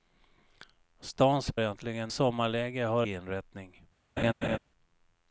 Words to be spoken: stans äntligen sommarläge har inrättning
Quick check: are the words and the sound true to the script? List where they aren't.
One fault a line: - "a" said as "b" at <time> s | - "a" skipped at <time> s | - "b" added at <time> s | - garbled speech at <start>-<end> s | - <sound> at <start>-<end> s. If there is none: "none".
- laugh at 4.2-4.6 s